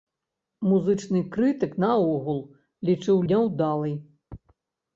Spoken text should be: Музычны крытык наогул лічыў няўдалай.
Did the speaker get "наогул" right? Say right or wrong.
right